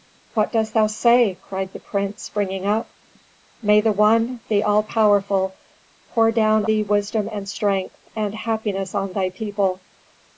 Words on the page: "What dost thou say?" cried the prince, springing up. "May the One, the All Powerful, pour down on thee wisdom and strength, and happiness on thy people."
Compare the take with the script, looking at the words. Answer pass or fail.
fail